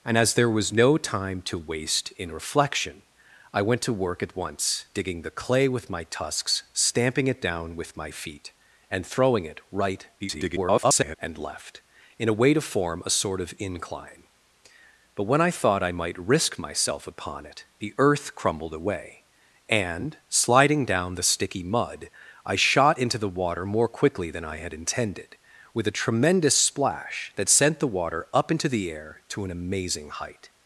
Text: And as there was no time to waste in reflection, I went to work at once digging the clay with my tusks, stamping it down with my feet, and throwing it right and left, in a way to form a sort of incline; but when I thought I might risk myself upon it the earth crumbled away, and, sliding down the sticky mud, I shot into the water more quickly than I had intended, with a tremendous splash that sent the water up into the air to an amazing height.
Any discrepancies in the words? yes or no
yes